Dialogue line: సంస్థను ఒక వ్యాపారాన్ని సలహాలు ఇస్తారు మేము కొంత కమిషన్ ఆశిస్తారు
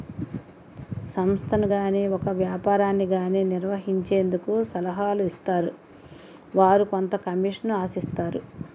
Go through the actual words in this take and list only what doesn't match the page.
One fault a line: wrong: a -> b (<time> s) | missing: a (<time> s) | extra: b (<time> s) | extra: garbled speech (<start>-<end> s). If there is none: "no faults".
extra: గాని (1.7 s)
extra: గాని నిర్వహించేందుకు (3.1 s)
wrong: మేము -> వారు (6.5 s)